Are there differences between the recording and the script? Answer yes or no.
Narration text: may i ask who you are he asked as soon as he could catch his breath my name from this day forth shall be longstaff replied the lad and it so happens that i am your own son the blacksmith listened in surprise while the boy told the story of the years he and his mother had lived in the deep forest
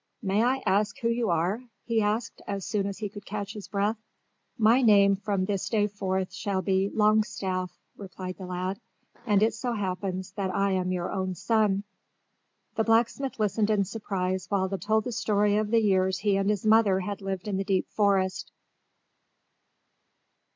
yes